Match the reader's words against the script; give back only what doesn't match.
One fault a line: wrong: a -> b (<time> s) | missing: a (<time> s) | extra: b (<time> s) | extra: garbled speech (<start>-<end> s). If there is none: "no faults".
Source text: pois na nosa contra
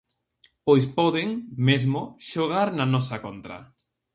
extra: poden mesmo xogar (1.0 s)